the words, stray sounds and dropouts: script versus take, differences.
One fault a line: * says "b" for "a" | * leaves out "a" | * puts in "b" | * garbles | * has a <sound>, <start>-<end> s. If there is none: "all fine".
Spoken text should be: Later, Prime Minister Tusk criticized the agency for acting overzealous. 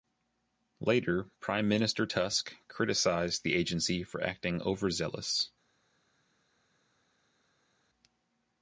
all fine